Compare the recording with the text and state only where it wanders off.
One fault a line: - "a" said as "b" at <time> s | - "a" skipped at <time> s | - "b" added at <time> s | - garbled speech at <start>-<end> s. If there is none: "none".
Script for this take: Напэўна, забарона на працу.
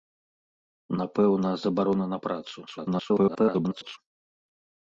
- garbled speech at 2.7-4.0 s